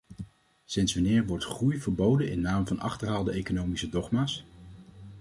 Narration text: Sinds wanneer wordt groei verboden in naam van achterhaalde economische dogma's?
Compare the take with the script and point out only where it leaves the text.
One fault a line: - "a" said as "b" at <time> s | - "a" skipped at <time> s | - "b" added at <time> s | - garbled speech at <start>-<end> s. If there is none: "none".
none